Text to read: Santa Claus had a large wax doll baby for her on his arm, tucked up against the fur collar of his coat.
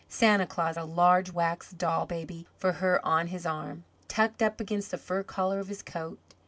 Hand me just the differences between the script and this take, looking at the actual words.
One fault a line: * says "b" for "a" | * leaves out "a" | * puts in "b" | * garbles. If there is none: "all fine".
* leaves out "had"